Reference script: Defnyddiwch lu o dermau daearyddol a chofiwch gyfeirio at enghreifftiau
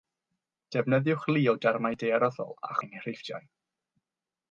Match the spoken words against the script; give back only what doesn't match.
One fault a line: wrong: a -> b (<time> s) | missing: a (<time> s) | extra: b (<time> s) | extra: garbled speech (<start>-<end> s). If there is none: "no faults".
missing: chofiwch gyfeirio at (2.8 s)